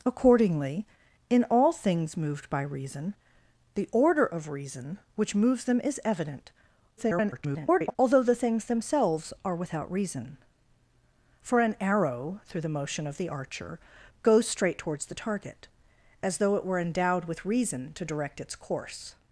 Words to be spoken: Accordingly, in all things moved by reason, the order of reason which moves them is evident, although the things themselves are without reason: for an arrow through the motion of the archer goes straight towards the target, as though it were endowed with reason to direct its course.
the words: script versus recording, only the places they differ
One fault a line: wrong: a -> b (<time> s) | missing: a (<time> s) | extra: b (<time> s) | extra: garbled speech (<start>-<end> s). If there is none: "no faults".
extra: garbled speech (7.0-8.0 s)